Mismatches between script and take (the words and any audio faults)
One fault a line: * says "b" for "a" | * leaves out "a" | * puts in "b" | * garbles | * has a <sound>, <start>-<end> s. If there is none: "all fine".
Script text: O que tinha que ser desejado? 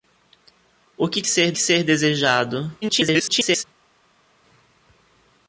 * says "ser" for "tinha"
* garbles